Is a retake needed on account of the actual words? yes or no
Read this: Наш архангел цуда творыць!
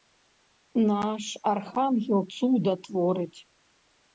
no